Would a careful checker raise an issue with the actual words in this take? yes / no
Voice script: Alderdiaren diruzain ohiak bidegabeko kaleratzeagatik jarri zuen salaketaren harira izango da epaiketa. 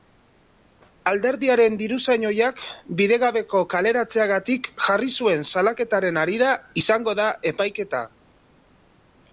no